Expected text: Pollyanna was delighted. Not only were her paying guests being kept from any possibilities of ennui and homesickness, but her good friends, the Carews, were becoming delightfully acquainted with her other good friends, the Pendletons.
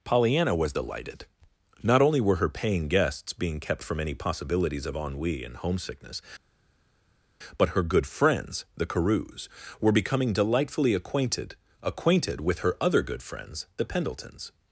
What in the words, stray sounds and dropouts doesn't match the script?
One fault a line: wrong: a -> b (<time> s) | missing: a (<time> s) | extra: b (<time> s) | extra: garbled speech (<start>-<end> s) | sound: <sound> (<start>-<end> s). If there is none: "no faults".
extra: acquainted (11.8 s)